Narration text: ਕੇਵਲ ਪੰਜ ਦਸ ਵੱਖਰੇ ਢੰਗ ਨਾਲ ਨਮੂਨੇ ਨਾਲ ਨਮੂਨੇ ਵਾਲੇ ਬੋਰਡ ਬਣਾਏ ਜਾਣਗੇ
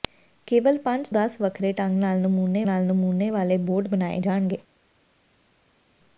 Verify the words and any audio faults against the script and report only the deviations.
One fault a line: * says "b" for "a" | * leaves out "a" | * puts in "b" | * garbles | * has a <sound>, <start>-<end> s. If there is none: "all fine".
all fine